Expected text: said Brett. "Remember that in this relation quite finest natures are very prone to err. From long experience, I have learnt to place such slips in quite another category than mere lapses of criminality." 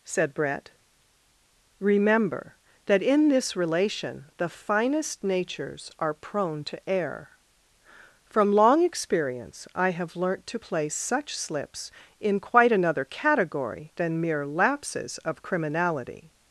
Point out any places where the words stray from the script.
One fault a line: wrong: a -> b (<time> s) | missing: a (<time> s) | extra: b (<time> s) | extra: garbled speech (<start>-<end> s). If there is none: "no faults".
wrong: quite -> the (4.4 s)
missing: very (6.1 s)